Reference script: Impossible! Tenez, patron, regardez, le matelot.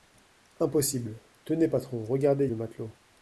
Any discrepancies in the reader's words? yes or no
no